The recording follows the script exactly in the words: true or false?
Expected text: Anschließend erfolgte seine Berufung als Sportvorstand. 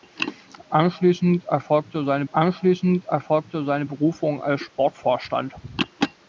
false